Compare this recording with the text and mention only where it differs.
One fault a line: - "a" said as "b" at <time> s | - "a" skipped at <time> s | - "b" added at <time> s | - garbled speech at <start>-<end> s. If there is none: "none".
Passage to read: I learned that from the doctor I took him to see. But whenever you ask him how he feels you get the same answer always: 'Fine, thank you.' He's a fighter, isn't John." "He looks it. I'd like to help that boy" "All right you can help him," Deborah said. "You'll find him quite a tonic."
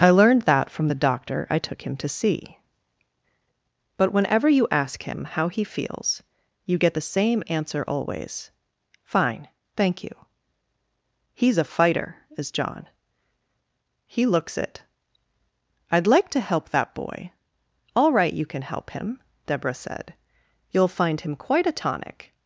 - "isn't" said as "is" at 12.4 s